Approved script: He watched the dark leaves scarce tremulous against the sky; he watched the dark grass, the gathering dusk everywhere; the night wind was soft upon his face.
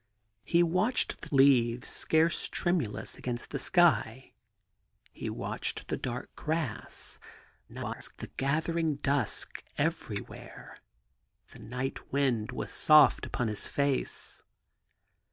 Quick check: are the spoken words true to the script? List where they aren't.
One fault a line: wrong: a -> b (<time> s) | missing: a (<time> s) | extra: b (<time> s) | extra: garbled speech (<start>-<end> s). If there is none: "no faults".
missing: dark (1.3 s)
extra: garbled speech (7.7-8.2 s)